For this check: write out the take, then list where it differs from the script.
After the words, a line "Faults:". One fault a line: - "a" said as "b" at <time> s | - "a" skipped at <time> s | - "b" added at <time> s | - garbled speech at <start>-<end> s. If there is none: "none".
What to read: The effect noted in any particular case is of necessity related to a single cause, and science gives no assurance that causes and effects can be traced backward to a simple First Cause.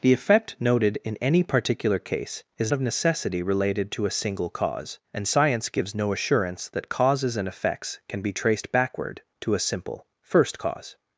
The effect noted in any particular case is of necessity related to a single cause, and science gives no assurance that causes and effects can be traced backward to a simple First Cause.
Faults:
none